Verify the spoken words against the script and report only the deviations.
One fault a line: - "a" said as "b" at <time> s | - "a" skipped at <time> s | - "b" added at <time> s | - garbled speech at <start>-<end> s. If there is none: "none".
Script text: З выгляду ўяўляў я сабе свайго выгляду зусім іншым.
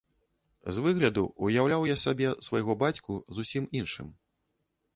- "выгляду" said as "бацьку" at 2.8 s